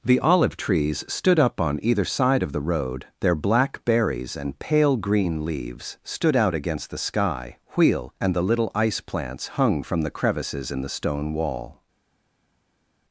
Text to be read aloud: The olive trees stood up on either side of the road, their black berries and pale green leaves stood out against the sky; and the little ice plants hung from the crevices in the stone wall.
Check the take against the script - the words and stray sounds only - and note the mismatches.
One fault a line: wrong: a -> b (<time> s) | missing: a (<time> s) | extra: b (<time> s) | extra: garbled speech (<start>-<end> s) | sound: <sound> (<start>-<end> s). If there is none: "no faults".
extra: wheel (7.8 s)